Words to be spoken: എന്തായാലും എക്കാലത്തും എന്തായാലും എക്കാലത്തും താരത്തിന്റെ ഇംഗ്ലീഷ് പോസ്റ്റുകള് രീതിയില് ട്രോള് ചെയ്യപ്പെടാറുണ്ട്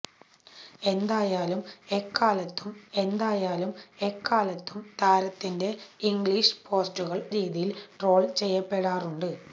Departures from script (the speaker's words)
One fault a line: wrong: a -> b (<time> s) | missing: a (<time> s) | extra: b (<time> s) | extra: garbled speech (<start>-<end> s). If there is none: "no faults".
no faults